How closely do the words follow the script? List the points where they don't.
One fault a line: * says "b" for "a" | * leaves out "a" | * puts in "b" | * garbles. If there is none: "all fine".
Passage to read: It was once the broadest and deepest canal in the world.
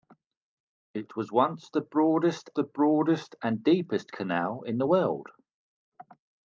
* puts in "the broadest"